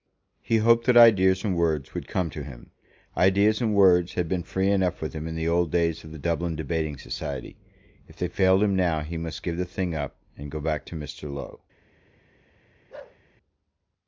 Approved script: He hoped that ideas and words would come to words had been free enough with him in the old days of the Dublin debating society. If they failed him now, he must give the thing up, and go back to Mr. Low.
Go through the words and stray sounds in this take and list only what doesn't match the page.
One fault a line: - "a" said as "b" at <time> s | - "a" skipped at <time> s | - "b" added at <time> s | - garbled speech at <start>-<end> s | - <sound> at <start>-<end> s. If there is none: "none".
- "him Ideas and" added at 2.4 s
- bark at 12.9-13.2 s